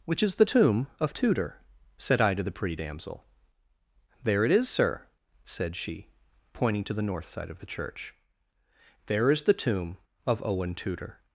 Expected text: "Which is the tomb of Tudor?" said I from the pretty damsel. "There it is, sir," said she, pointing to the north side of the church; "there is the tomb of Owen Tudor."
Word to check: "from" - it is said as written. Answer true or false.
false